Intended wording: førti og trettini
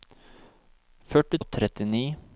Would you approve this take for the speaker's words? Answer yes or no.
yes